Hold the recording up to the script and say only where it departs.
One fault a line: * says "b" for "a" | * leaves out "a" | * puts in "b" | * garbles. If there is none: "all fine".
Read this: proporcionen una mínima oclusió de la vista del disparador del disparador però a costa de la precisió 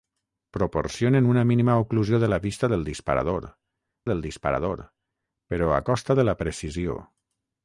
all fine